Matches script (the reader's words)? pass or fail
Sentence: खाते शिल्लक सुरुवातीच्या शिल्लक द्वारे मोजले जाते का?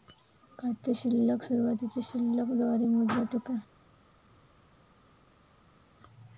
pass